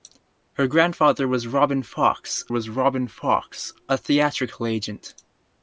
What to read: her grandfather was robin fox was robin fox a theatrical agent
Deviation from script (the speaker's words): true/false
false